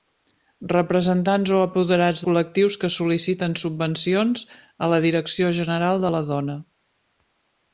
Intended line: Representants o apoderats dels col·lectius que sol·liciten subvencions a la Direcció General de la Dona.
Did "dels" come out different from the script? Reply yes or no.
yes